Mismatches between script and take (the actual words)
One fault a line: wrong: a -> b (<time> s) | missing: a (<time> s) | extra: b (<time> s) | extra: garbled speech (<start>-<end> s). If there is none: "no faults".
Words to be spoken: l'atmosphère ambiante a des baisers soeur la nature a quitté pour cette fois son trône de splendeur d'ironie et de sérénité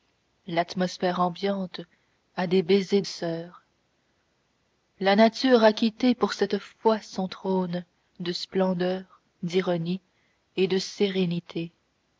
no faults